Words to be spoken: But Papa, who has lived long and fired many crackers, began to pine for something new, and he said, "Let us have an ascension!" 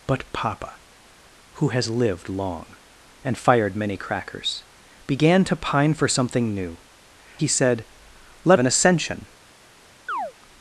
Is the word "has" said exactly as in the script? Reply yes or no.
yes